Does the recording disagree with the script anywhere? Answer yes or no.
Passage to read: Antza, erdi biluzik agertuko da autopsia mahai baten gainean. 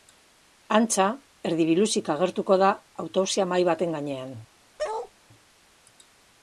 no